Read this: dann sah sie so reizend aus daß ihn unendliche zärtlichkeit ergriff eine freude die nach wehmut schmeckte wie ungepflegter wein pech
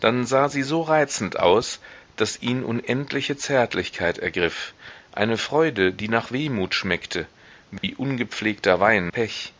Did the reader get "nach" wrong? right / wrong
right